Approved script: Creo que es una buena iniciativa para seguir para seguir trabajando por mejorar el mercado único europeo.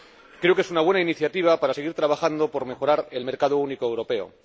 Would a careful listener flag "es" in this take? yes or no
no